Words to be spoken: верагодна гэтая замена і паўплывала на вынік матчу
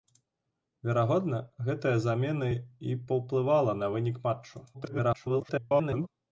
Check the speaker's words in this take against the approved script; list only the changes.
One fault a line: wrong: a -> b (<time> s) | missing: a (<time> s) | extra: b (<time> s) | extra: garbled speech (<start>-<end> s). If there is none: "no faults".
extra: garbled speech (4.7-6.1 s)